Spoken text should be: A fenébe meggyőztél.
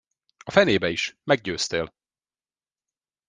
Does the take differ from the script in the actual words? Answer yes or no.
yes